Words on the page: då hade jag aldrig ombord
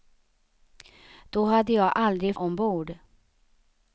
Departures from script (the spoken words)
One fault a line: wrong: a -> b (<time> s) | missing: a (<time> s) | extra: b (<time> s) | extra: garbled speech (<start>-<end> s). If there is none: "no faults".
no faults